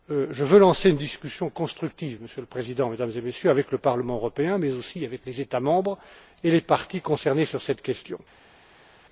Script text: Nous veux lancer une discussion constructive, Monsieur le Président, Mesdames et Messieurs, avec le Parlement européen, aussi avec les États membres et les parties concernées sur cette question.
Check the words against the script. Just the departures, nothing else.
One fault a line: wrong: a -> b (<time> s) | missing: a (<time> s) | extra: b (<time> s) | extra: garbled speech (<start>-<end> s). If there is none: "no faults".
wrong: Nous -> Je (0.1 s)
extra: mais (4.6 s)